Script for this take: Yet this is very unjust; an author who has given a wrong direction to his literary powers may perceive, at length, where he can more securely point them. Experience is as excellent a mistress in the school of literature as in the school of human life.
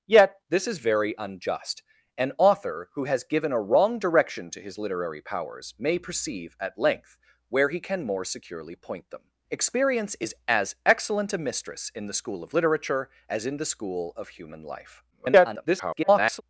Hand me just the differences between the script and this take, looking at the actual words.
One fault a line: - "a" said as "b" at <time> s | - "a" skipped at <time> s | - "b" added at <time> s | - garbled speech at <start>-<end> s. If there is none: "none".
- garbled speech at 15.1-16.4 s